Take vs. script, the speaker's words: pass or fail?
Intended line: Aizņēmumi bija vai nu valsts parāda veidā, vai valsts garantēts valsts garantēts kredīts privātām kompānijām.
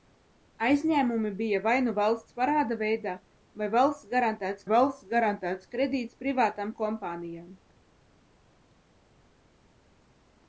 pass